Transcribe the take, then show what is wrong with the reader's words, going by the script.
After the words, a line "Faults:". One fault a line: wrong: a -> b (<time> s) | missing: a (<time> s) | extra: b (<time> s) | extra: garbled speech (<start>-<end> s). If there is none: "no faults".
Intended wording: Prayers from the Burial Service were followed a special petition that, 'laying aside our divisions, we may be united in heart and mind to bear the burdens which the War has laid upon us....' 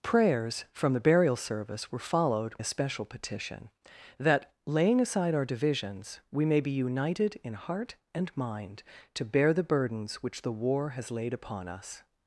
Prayers from the Burial Service were followed a special petition that, 'laying aside our divisions, we may be united in heart and mind to bear the burdens which the War has laid upon us....'
Faults:
no faults